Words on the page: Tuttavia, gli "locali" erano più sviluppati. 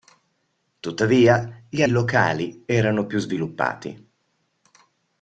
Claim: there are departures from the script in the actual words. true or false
false